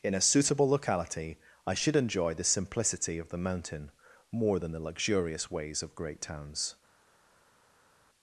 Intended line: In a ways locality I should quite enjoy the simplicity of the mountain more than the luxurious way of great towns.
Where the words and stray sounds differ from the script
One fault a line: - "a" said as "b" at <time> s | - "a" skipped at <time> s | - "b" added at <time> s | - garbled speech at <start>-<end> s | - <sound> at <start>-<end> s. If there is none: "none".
- "ways" said as "suitable" at 0.2 s
- "quite" skipped at 1.9 s
- "way" said as "ways" at 5.5 s